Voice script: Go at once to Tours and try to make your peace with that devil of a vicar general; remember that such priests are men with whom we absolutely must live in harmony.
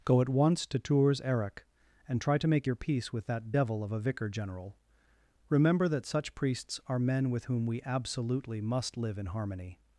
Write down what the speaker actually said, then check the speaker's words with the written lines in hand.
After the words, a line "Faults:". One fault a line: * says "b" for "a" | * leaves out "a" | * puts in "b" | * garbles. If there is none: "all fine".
Go at once to Tours eric and try to make your peace with that devil of a vicar general; remember that such priests are men with whom we absolutely must live in harmony.
Faults:
* puts in "eric"